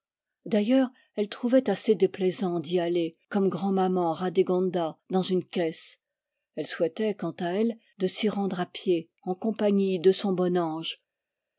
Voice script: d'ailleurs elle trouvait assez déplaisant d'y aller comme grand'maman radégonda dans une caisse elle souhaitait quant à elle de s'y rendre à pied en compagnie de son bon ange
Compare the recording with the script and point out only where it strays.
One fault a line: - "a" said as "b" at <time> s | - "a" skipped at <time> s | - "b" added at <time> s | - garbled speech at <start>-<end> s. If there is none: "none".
none